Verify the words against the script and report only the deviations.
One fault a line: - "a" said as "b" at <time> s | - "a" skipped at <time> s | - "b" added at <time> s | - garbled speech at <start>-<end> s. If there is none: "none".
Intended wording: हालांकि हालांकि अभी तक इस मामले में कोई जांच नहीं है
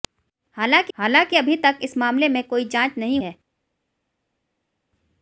none